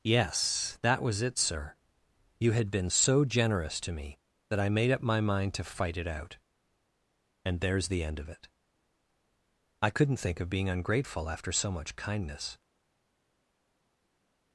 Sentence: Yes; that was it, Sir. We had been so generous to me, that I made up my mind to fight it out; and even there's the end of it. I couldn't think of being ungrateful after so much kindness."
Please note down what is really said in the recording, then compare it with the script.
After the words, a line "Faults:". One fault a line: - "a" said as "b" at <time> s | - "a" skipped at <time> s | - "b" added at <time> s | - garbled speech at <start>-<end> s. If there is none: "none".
Yes; that was it, Sir. You had been so generous to me, that I made up my mind to fight it out; and there's the end of it. I couldn't think of being ungrateful after so much kindness."
Faults:
- "We" said as "You" at 2.4 s
- "even" skipped at 7.6 s